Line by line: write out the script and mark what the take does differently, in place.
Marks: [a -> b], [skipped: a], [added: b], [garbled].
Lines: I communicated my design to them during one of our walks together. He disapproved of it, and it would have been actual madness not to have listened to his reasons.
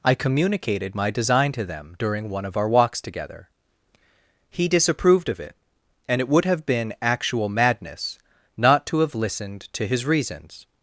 I communicated my design to them during one of our walks together. He disapproved of it, and it would have been actual madness not to have listened to his reasons.